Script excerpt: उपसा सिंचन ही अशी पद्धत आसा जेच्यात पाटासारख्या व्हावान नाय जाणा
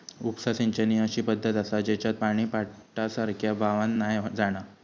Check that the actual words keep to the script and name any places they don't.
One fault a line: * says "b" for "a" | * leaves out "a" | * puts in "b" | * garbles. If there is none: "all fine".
* puts in "पानी"